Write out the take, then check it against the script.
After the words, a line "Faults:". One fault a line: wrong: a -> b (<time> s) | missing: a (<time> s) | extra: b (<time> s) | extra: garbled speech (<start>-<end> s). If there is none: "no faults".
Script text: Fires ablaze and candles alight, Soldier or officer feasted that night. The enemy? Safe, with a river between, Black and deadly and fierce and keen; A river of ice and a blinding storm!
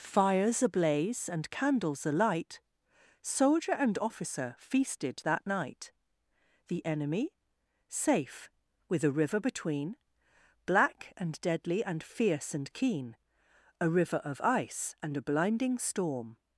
Fires ablaze and candles alight, Soldier and officer feasted that night. The enemy? Safe, with a river between, Black and deadly and fierce and keen; A river of ice and a blinding storm!
Faults:
wrong: or -> and (3.7 s)